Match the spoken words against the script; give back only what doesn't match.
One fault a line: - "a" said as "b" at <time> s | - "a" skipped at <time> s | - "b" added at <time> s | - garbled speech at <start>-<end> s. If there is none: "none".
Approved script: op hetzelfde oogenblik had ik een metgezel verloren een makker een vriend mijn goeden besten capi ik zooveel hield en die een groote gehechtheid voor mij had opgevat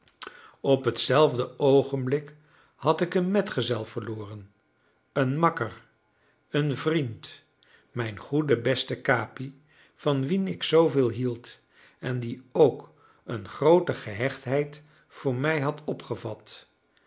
- "van wien" added at 9.9 s
- "ook" added at 12.5 s